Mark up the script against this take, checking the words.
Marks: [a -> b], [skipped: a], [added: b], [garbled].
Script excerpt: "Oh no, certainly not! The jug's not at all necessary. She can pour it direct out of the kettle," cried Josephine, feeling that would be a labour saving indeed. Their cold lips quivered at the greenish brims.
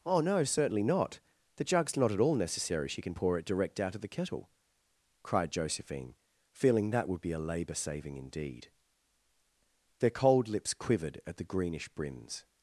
"Oh no, certainly not! The jug's not at all necessary. She can pour it direct out of the kettle," cried Josephine, feeling that would be a labour saving indeed. Their cold lips quivered at the greenish brims.